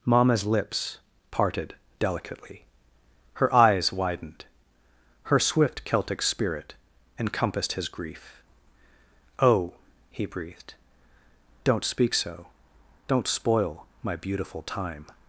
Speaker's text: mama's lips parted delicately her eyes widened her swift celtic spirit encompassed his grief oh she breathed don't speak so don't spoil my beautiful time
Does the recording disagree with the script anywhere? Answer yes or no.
yes